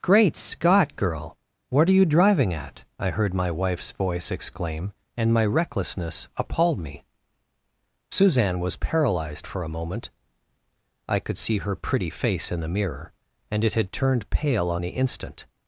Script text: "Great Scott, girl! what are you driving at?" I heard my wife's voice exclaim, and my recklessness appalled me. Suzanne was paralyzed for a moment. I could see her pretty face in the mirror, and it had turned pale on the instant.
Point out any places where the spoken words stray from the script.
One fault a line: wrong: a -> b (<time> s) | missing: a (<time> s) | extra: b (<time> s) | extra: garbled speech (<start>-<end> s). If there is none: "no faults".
no faults